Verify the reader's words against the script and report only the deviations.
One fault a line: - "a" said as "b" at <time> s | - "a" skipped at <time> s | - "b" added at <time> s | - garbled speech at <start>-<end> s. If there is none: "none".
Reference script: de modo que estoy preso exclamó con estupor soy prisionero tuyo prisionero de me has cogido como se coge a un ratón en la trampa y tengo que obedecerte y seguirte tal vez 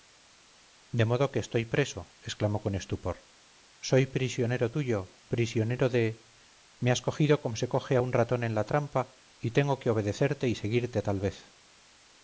none